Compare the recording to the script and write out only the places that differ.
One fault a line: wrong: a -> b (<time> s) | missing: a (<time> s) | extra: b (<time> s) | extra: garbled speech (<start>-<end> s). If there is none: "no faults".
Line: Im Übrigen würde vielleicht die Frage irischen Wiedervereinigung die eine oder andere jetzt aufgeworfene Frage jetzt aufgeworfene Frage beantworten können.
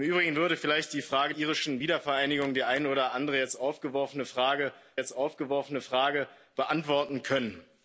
no faults